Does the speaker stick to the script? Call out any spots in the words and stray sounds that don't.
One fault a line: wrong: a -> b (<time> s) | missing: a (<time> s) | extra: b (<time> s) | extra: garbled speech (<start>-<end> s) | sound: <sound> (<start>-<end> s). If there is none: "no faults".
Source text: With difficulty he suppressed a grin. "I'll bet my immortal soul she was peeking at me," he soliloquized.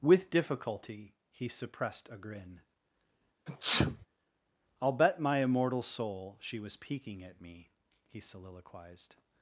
sound: sneeze (3.5-4.1 s)